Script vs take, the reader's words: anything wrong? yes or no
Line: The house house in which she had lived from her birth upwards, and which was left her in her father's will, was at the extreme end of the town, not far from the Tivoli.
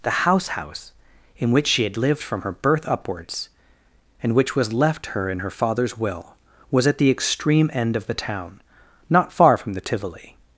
no